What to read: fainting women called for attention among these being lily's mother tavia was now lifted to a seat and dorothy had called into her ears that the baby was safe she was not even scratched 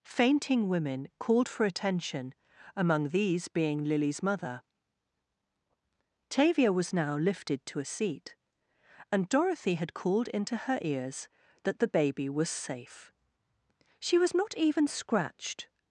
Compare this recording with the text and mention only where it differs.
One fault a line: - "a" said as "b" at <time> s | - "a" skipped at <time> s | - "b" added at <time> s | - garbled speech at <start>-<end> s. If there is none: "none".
none